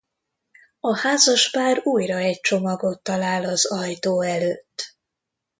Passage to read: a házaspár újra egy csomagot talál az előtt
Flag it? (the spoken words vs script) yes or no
yes